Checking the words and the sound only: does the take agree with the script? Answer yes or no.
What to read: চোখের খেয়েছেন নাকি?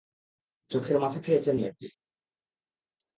no